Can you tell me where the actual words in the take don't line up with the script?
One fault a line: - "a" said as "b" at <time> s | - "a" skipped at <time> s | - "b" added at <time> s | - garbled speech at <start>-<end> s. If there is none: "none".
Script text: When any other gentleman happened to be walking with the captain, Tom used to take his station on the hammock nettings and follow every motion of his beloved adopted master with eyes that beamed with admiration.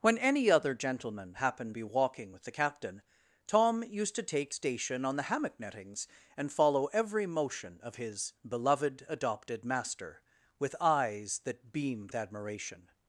- "to" skipped at 1.8 s
- "his" skipped at 4.5 s
- "with" skipped at 12.1 s